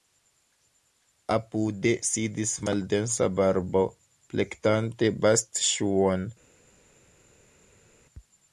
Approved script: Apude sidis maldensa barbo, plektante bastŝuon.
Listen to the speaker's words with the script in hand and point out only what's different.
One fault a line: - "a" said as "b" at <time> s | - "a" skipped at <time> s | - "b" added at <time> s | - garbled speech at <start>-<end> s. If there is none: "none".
none